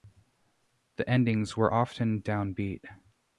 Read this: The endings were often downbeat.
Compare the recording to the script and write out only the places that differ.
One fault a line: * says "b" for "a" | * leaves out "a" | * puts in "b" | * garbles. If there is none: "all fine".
all fine